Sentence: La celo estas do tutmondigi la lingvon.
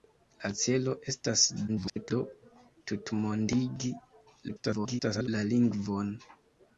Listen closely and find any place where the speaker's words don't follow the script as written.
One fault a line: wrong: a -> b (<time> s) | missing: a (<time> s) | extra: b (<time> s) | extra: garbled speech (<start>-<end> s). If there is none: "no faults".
extra: garbled speech (1.7-2.1 s)
extra: garbled speech (4.5-5.3 s)